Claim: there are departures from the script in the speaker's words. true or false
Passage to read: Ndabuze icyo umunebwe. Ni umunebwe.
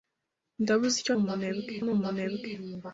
false